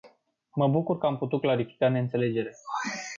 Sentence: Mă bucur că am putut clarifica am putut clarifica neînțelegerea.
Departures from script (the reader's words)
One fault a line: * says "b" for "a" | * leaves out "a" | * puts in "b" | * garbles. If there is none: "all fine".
* leaves out "am putut clarifica"